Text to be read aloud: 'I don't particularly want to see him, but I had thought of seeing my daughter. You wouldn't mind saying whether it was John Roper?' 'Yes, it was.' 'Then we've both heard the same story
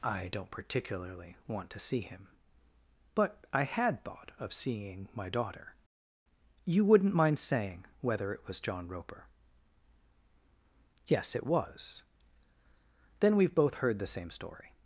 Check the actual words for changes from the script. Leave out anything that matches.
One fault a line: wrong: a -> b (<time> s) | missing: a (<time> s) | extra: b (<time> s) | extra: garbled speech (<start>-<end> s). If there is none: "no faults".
no faults